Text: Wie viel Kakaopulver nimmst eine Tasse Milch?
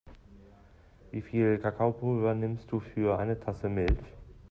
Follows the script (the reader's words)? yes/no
no